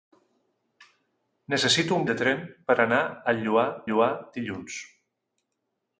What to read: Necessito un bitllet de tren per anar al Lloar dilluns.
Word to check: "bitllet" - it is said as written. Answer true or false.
false